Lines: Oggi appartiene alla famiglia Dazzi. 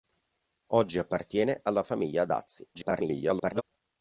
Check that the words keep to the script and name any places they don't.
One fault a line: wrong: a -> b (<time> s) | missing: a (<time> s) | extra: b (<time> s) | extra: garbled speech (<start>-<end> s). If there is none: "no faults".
extra: garbled speech (2.7-3.6 s)